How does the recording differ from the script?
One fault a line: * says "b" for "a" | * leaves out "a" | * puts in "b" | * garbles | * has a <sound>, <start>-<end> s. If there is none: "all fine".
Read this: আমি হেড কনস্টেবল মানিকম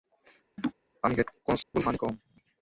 * has a laugh, 0.6-0.7 s
* has a dropout, 1.6-1.7 s